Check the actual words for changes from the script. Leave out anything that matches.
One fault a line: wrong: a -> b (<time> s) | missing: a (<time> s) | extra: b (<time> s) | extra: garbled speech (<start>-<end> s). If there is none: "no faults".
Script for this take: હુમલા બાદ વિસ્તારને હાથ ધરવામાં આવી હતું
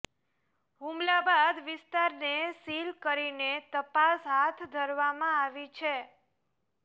extra: સીલ કરીને તપાસ (2.6 s)
wrong: હતું -> છે (5.7 s)